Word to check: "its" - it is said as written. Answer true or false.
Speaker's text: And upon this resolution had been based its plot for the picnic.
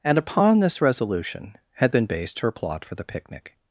false